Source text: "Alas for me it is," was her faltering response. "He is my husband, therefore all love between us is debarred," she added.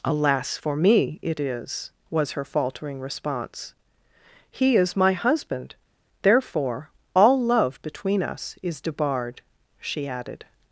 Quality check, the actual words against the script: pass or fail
pass